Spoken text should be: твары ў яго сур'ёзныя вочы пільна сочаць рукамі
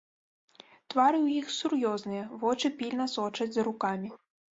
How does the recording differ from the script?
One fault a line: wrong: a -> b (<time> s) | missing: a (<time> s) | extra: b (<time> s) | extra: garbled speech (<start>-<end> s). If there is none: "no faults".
wrong: яго -> іх (1.4 s)
extra: за (3.5 s)